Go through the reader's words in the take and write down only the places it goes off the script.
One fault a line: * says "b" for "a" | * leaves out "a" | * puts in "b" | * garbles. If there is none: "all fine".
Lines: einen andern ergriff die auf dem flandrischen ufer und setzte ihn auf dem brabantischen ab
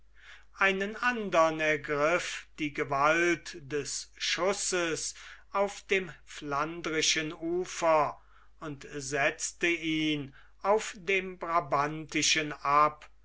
* puts in "gewalt des schusses"